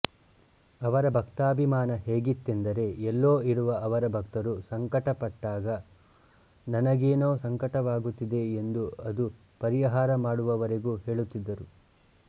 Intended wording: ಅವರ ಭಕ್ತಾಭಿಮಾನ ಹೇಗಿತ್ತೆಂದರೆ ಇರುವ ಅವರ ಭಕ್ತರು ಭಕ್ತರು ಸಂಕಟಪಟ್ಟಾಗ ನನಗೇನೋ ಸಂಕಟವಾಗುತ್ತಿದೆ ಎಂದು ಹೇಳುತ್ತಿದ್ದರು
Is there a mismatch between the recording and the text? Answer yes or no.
yes